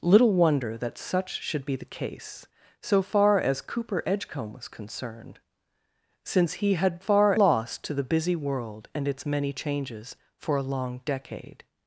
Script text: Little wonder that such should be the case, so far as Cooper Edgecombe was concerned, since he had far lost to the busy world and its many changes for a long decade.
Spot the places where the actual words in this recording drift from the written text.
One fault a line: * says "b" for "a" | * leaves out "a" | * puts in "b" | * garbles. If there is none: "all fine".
all fine